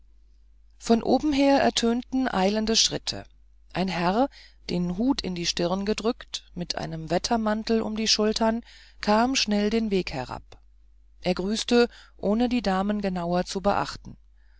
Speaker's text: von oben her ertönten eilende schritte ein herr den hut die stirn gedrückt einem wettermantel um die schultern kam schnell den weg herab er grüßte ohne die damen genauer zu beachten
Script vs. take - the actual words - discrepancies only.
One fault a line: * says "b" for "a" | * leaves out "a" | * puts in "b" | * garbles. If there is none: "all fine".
* puts in "in"
* puts in "mit"